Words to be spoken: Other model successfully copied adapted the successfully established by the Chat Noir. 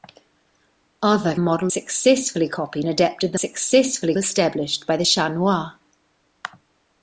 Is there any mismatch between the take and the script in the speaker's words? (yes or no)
no